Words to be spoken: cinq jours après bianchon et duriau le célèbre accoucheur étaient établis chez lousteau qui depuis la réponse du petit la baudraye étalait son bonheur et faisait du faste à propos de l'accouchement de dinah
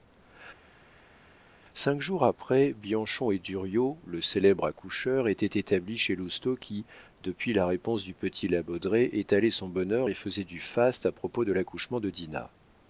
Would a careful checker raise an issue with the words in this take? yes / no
no